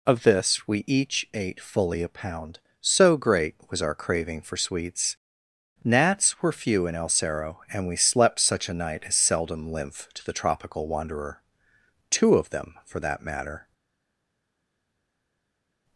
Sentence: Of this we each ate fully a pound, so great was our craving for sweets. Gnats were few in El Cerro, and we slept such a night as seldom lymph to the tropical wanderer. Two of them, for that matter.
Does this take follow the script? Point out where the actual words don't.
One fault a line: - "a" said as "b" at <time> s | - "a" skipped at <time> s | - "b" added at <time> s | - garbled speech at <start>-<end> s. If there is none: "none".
none